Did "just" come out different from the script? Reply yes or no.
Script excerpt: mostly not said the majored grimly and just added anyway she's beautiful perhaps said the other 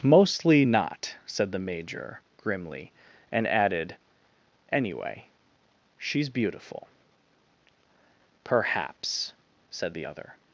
yes